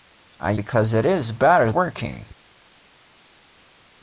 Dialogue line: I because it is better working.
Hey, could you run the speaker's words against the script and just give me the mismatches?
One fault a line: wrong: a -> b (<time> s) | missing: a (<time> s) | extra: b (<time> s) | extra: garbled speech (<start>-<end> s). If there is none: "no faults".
no faults